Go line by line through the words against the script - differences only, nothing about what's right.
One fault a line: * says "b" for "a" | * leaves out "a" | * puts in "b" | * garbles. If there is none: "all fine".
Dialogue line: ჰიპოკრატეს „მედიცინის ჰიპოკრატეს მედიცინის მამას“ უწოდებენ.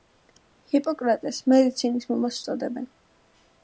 * leaves out "ჰიპოკრატეს მედიცინის"